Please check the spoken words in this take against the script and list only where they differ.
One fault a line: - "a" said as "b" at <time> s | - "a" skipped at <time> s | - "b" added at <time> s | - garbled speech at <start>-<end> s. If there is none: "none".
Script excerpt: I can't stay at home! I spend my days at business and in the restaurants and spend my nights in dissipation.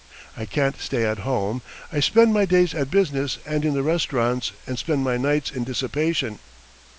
none